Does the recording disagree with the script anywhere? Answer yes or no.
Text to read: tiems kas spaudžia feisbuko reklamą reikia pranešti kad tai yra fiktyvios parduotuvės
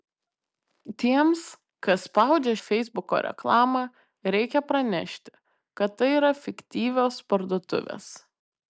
no